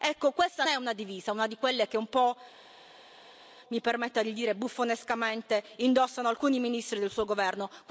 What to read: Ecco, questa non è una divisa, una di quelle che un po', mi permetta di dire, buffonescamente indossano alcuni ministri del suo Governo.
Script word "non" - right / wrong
wrong